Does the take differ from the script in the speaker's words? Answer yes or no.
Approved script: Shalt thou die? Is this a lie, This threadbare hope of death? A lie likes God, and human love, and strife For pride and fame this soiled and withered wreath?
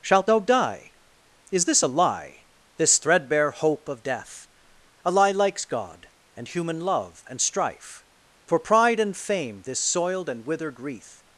no